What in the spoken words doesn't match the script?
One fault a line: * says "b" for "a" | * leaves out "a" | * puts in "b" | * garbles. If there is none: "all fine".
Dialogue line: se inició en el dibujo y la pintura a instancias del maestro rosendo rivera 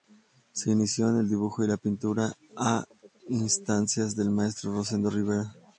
all fine